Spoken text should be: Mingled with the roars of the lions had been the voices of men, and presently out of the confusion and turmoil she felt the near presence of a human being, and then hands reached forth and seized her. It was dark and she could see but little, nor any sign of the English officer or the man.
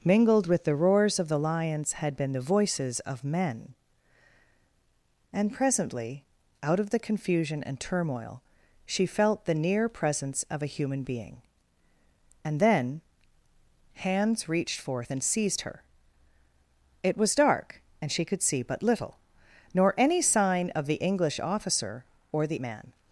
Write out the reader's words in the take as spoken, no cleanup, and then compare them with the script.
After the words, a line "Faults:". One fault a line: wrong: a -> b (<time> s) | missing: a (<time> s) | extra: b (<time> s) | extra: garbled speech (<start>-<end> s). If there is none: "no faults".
Mingled with the roars of the lions had been the voices of men, and presently out of the confusion and turmoil she felt the near presence of a human being, and then hands reached forth and seized her. It was dark and she could see but little, nor any sign of the English officer or the man.
Faults:
no faults